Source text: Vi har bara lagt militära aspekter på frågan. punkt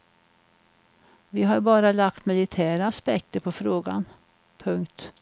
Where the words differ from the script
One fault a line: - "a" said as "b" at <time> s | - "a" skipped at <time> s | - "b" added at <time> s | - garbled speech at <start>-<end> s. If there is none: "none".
none